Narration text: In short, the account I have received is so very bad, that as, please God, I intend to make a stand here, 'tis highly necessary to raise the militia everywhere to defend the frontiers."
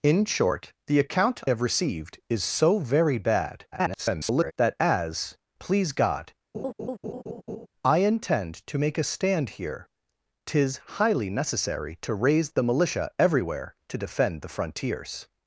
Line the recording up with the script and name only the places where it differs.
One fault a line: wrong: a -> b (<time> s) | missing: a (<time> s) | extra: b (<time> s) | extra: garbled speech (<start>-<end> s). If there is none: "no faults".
missing: I (1.4 s)
extra: garbled speech (3.7-4.5 s)